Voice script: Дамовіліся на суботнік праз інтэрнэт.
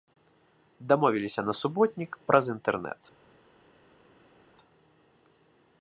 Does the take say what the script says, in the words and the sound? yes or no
yes